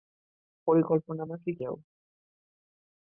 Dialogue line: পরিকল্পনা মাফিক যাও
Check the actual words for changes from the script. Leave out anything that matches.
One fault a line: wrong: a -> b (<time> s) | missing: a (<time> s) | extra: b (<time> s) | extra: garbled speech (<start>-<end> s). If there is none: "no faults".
no faults